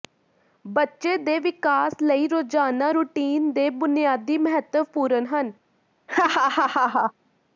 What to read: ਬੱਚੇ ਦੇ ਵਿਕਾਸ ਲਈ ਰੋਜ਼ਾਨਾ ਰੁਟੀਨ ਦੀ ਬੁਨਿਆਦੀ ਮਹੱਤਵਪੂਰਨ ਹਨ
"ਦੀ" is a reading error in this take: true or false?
true